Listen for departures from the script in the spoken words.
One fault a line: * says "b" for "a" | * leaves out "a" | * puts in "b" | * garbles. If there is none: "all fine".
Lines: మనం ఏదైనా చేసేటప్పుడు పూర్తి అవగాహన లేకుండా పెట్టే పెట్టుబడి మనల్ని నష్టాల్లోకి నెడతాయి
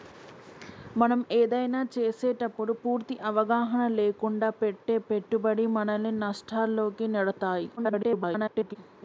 * garbles